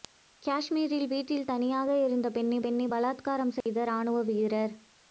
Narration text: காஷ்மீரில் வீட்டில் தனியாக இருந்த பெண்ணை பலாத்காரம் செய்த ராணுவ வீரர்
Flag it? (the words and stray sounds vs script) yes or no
yes